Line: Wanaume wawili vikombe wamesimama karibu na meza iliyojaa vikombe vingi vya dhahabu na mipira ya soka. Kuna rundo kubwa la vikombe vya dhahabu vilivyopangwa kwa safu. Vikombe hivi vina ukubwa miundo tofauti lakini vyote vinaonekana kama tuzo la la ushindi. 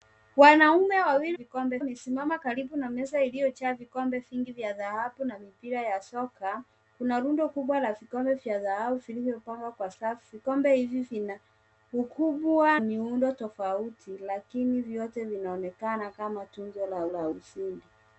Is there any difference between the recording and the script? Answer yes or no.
no